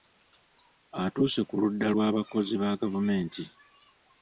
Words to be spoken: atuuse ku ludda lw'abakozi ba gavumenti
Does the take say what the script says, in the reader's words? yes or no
yes